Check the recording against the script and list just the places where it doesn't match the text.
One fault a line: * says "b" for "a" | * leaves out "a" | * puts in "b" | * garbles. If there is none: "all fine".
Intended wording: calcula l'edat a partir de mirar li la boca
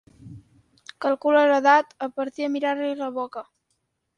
all fine